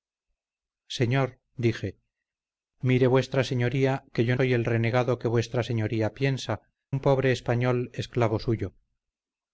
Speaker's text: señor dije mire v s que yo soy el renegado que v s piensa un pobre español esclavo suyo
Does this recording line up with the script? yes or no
yes